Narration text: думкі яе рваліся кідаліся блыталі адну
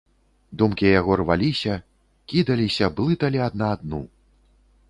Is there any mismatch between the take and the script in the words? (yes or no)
yes